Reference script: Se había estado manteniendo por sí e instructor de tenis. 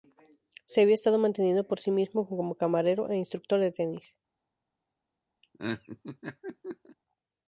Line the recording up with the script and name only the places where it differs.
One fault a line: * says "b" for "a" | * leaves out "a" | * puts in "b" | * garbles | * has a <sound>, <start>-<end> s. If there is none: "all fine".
* puts in "mismo como camarero"
* has a laugh, 5.4-7.0 s